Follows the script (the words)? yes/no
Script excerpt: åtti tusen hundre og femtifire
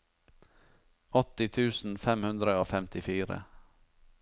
no